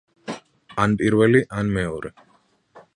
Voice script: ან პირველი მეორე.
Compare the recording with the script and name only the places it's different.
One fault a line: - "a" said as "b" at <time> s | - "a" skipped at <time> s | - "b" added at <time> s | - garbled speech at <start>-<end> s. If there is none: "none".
- "ან" added at 1.6 s